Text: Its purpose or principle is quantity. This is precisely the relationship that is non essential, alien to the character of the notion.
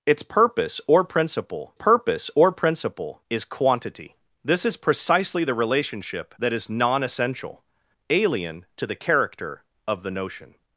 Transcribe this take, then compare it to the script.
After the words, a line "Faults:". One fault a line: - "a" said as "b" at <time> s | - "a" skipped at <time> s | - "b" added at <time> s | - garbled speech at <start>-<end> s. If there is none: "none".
Its purpose or principle purpose or principle is quantity. This is precisely the relationship that is non essential, alien to the character of the notion.
Faults:
- "purpose or principle" added at 1.7 s